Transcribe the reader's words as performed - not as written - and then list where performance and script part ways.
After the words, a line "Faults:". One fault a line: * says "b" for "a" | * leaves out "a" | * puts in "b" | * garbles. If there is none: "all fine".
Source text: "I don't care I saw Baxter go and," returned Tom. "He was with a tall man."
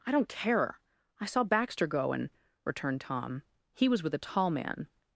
"I don't care I saw Baxter go and," returned Tom. "He was with a tall man."
Faults:
all fine